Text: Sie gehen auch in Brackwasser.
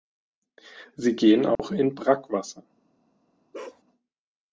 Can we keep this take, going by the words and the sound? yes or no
no